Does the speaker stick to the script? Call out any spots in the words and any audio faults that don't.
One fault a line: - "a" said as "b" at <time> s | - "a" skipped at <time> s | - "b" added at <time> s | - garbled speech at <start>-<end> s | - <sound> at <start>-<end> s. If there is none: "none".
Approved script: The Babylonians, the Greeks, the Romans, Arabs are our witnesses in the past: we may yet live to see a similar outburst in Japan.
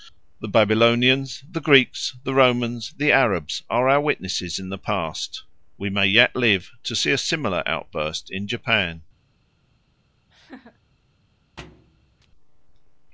- "the" added at 3.0 s
- laugh at 10.3-10.8 s
- thud at 11.6-12.3 s